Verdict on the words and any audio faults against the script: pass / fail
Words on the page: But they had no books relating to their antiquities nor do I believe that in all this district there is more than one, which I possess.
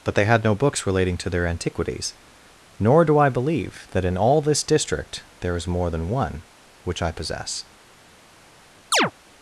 fail